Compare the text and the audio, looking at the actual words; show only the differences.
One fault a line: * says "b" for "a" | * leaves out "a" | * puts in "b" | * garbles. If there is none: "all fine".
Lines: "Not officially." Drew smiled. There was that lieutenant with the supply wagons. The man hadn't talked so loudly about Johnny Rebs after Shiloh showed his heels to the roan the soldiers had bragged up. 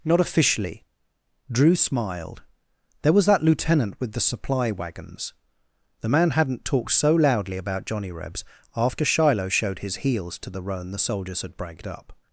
all fine